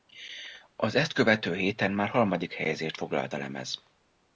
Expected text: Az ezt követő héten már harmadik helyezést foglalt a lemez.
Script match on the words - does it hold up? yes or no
yes